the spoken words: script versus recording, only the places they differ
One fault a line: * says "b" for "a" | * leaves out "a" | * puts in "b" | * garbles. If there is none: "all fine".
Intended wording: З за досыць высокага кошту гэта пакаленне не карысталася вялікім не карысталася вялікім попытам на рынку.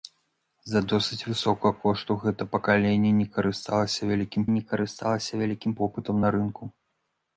all fine